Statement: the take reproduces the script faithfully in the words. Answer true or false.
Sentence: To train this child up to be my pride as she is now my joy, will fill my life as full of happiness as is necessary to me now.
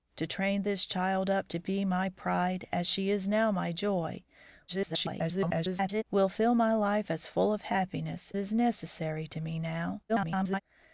false